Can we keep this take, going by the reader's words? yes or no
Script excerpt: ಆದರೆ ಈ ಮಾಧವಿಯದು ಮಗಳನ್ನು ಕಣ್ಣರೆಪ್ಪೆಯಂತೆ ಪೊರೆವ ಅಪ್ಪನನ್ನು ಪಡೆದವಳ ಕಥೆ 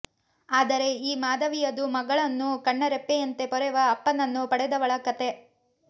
yes